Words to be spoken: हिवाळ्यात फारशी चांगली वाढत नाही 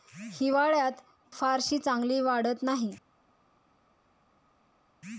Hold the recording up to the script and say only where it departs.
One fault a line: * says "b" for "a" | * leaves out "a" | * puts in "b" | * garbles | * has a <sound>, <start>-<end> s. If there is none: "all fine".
all fine